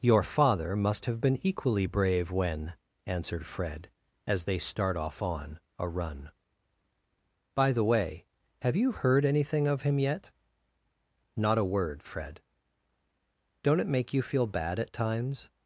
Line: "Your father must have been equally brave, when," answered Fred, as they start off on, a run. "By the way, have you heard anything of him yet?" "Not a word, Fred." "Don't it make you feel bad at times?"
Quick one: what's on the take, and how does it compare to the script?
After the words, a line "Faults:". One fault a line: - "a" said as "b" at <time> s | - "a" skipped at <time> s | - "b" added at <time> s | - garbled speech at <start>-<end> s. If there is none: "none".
"Your father must have been equally brave, when," answered Fred, as they start off on, a run. "By the way, have you heard anything of him yet?" "Not a word, Fred." "Don't it make you feel bad at times?"
Faults:
none